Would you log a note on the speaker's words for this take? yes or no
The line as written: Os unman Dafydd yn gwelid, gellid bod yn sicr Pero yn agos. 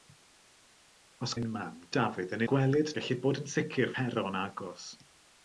no